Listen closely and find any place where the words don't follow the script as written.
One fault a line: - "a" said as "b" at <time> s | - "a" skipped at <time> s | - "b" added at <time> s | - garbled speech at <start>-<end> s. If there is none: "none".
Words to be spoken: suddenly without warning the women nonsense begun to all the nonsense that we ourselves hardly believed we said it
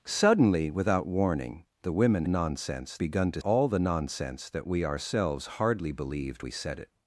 none